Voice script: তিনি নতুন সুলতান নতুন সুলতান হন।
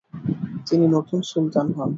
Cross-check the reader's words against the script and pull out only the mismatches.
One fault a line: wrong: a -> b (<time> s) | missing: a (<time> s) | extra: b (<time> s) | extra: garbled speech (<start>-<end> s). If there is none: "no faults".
missing: নতুন সুলতান (1.7 s)